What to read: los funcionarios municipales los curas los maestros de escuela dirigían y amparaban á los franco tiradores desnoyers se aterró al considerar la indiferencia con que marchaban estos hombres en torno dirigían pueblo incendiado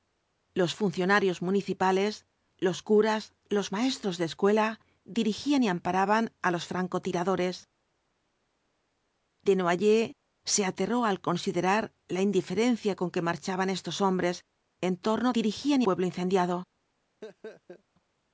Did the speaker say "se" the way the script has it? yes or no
yes